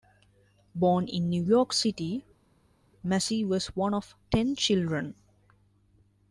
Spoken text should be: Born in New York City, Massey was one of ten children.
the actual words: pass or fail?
pass